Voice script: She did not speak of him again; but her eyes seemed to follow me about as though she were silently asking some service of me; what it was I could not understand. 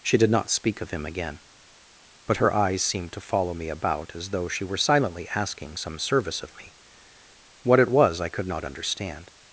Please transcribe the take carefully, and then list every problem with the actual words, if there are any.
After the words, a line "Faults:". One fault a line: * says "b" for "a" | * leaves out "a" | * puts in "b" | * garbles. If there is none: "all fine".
She did not speak of him again; but her eyes seemed to follow me about as though she were silently asking some service of me; what it was I could not understand.
Faults:
all fine